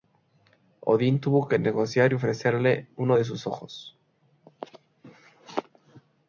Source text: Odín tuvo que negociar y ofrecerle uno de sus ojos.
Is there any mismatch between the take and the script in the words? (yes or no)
no